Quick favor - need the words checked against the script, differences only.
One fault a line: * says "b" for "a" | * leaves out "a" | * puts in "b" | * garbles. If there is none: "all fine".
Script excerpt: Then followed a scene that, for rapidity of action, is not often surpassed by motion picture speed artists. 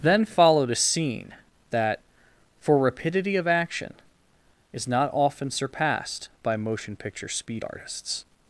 all fine